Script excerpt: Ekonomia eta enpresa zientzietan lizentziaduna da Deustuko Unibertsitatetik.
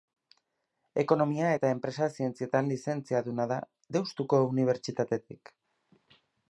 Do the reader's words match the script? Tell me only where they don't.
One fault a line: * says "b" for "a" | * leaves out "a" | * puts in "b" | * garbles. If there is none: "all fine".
all fine